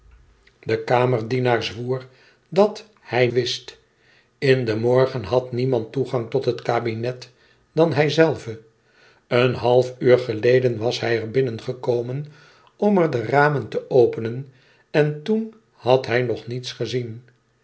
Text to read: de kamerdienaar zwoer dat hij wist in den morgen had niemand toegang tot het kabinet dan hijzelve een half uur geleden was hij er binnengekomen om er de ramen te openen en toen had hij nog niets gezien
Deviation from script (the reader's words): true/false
false